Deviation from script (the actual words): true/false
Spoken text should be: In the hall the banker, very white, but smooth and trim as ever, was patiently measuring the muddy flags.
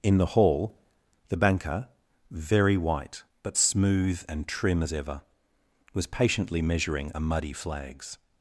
true